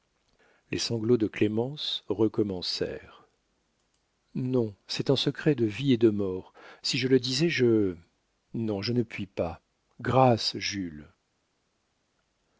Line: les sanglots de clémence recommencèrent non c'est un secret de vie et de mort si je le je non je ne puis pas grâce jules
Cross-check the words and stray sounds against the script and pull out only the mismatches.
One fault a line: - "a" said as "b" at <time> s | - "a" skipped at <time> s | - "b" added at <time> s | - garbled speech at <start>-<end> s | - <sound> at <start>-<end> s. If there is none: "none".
- "disais" added at 7.2 s